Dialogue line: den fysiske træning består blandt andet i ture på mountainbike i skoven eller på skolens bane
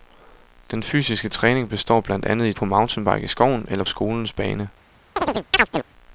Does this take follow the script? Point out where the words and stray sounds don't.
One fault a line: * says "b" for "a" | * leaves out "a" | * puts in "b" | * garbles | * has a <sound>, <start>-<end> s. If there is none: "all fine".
* leaves out "ture"
* leaves out "på"
* has a chirp, 5.2-5.8 s